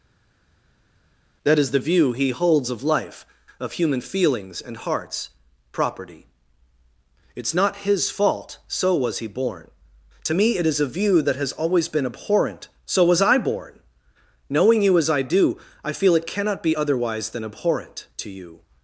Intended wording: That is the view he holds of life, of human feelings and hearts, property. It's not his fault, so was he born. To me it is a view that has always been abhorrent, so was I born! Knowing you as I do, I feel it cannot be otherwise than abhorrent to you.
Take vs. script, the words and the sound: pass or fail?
pass